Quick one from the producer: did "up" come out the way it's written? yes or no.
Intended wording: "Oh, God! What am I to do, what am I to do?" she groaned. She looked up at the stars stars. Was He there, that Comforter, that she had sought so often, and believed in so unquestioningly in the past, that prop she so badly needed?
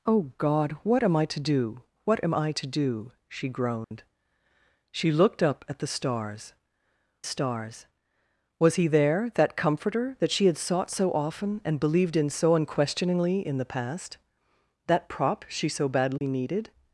yes